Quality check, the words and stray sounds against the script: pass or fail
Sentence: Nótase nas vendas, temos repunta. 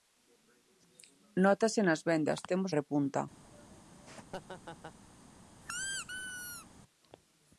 fail